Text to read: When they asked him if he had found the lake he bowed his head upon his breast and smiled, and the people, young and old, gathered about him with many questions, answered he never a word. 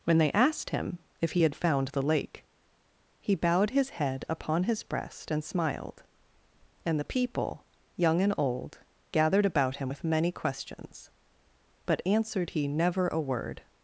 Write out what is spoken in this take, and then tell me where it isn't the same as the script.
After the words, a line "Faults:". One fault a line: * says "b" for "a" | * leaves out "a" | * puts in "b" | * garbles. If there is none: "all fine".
When they asked him if he had found the lake he bowed his head upon his breast and smiled, and the people, young and old, gathered about him with many questions, but answered he never a word.
Faults:
* puts in "but"